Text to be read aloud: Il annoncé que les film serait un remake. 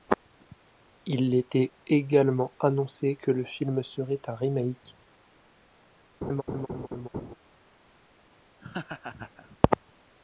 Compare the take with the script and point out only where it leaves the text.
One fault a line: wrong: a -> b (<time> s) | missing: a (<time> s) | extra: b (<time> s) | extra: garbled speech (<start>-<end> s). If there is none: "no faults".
extra: était également (1.4 s)
wrong: les -> le (3.3 s)